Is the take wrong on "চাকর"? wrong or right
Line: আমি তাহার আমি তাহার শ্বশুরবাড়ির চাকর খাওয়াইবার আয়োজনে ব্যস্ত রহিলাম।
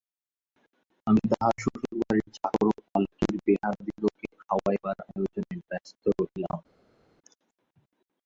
wrong